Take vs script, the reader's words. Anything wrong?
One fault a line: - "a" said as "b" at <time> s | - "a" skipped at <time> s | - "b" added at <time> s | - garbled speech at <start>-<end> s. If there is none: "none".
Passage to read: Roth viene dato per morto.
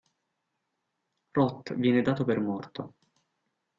none